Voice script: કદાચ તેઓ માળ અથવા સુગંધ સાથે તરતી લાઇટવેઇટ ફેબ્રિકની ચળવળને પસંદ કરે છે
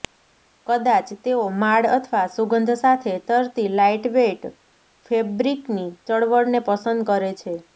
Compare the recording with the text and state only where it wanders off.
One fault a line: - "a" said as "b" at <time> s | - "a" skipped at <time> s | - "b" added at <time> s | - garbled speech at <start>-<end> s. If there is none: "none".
none